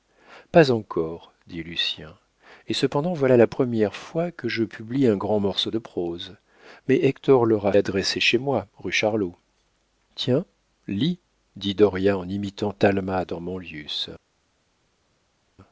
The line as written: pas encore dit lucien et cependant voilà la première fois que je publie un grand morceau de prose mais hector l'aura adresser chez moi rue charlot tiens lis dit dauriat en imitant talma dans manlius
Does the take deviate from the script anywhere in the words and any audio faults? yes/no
no